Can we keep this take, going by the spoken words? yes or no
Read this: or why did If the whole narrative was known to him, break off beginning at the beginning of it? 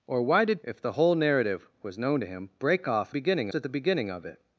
yes